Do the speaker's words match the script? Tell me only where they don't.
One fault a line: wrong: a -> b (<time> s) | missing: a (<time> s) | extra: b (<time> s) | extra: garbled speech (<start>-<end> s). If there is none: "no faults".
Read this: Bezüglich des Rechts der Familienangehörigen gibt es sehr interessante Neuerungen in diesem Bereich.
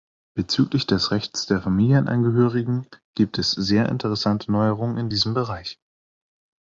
no faults